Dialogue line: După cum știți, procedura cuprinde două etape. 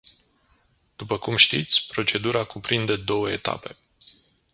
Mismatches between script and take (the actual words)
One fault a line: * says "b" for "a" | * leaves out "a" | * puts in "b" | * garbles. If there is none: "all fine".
all fine